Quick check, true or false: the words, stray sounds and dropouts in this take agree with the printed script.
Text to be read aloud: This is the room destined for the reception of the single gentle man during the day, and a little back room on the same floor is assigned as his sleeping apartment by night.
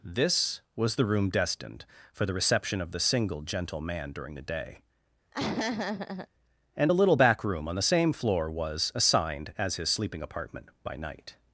false